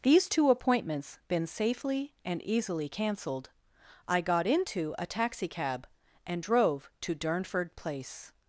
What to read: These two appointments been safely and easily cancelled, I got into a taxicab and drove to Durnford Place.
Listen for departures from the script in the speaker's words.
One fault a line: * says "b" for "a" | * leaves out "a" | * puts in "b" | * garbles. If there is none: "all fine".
all fine